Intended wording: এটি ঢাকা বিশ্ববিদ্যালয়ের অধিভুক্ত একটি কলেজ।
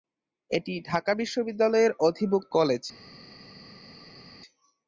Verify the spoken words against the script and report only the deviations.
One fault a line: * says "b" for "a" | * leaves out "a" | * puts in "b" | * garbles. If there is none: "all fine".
* leaves out "একটি"